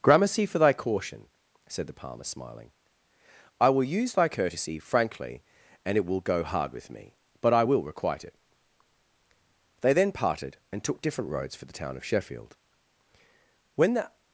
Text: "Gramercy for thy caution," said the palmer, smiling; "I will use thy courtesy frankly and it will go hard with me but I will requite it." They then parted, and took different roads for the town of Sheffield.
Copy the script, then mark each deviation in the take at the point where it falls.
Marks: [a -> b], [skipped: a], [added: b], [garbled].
"Gramercy for thy caution," said the palmer, smiling; "I will use thy courtesy frankly and it will go hard with me but I will requite it." They then parted, and took different roads for the town of Sheffield. [added: When the]